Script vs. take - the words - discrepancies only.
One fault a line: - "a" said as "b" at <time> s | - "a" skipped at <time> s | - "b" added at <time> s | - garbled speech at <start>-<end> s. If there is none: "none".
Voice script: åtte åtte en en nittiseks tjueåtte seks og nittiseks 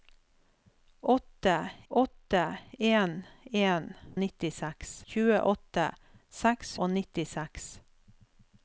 none